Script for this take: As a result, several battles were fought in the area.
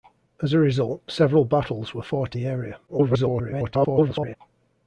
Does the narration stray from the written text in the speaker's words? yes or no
yes